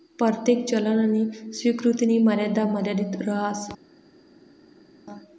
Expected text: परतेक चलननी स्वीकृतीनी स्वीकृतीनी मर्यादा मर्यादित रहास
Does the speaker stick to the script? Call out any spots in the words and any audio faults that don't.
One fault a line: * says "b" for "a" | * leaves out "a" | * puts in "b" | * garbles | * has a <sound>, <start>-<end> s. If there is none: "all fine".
* leaves out "स्वीकृतीनी"